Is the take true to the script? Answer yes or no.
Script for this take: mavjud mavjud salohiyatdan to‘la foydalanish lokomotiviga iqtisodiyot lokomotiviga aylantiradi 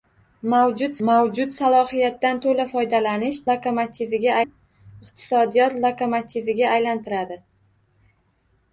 yes